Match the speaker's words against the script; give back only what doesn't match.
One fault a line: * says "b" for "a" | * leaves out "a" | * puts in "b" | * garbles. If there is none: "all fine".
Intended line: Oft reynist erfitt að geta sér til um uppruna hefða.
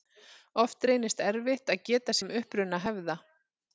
* leaves out "sér til"